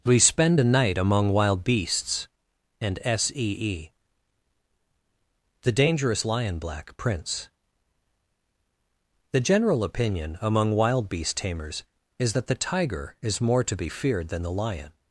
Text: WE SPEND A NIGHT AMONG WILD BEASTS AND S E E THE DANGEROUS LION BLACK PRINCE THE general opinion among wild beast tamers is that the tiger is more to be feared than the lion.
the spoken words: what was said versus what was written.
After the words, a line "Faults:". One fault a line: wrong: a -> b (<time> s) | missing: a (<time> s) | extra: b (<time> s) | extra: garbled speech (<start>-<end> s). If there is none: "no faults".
WE SPEND A NIGHT AMONG WILD BEASTS AND S E E THE DANGEROUS LION BLACK PRINCE THE general opinion among wild beast tamers is that the tiger is more to be feared than the lion.
Faults:
no faults